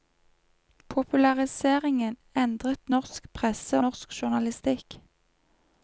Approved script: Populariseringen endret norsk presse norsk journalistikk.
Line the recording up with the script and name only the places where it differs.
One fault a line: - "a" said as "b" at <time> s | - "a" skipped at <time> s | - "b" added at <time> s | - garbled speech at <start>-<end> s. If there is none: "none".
none